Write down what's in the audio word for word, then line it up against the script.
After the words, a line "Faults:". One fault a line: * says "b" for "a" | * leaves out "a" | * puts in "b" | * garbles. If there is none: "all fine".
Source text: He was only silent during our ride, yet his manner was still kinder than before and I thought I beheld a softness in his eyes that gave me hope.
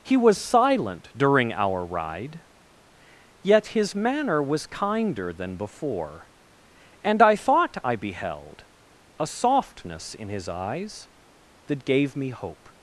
He was silent during our ride, yet his manner was kinder than before and I thought I beheld a softness in his eyes that gave me hope.
Faults:
* leaves out "only"
* leaves out "still"